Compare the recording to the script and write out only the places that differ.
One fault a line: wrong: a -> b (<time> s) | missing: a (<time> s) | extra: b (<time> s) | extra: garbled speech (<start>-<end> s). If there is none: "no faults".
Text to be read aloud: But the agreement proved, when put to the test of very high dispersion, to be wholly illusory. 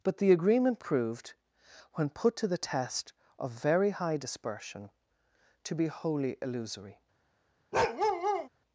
no faults